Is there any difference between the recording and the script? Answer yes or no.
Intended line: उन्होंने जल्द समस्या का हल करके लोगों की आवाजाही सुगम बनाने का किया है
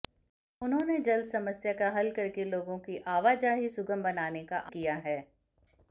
no